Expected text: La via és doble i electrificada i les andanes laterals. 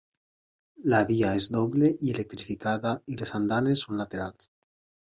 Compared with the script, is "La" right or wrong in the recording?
right